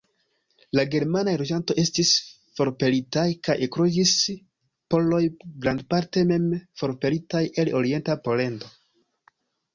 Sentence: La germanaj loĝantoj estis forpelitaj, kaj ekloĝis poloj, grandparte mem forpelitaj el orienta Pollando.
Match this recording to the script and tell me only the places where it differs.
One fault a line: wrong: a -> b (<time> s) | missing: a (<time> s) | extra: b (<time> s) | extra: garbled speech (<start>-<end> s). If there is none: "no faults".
no faults